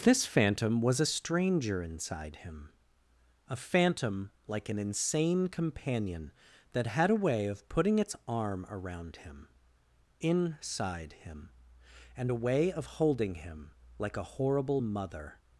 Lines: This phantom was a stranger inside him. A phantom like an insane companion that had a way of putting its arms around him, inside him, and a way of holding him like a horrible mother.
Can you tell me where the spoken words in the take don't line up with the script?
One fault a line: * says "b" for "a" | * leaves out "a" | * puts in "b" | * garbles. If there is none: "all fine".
* says "arm" for "arms"